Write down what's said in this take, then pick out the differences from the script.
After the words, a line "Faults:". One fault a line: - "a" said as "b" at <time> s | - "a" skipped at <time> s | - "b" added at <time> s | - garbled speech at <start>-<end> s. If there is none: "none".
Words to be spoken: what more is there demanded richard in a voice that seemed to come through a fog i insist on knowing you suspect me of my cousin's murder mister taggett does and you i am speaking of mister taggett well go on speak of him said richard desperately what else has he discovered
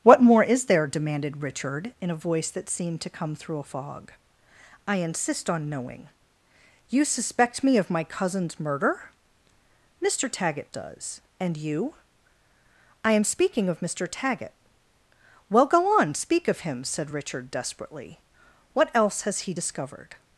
what more is there demanded richard in a voice that seemed to come through a fog i insist on knowing you suspect me of my cousin's murder mister taggett does and you i am speaking of mister taggett well go on speak of him said richard desperately what else has he discovered
Faults:
none